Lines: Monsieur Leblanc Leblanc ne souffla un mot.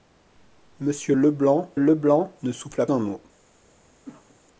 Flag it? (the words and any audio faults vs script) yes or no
yes